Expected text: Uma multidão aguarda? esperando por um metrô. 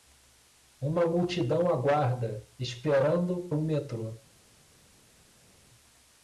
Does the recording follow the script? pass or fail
fail